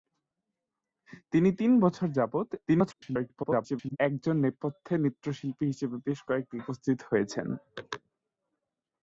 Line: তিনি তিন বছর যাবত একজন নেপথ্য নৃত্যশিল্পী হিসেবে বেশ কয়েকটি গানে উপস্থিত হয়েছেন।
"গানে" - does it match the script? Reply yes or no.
no